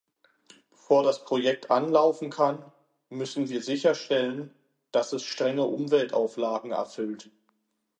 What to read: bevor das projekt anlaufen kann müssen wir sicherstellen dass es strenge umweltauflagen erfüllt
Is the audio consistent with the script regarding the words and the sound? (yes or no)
yes